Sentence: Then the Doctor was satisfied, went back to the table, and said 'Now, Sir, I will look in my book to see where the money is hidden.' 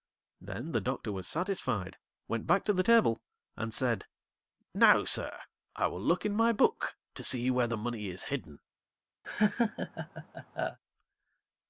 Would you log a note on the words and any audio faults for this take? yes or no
yes